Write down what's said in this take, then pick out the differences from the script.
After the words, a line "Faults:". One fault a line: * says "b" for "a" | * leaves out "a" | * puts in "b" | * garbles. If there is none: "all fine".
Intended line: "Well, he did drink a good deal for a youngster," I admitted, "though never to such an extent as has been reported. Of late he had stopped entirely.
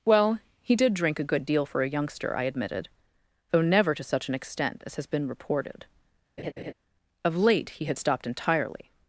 "Well, he did drink a good deal for a youngster," I admitted, "though never to such an extent as has been reported. Of late he had stopped entirely.
Faults:
all fine